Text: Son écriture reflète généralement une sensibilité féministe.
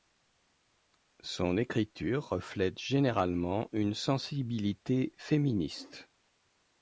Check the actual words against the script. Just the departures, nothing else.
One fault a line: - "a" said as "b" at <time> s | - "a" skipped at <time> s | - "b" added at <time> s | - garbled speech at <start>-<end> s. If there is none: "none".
none